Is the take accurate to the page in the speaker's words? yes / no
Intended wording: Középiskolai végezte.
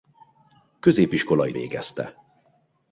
yes